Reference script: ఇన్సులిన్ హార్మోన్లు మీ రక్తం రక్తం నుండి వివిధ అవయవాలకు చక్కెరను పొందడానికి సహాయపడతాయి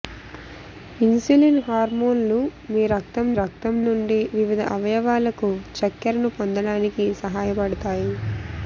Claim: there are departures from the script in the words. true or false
false